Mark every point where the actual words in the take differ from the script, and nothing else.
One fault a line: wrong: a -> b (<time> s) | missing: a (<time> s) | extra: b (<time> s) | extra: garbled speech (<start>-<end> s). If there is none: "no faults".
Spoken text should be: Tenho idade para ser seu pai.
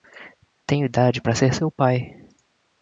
no faults